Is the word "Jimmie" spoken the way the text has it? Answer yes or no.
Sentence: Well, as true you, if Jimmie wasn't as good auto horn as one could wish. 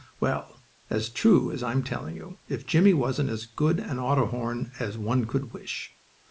yes